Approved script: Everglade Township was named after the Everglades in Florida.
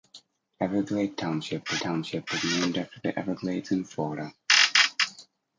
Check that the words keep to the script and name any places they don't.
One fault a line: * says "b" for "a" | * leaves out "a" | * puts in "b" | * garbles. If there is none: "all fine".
* puts in "Township was"